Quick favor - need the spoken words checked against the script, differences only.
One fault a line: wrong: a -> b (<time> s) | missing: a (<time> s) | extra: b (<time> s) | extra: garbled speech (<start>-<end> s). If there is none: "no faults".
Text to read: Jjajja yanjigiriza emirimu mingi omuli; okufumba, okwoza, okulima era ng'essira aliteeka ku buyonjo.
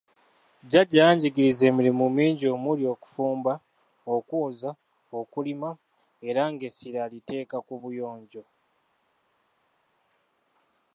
no faults